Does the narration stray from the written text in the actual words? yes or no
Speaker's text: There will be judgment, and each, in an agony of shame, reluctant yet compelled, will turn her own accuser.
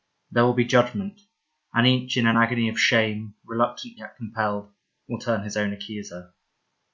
yes